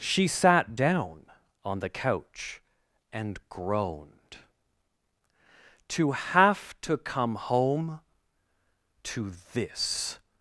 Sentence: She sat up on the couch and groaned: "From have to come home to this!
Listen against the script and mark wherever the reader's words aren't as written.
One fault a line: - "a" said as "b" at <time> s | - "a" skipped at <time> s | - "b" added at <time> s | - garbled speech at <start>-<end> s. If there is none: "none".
- "up" said as "down" at 0.7 s
- "From" said as "To" at 5.9 s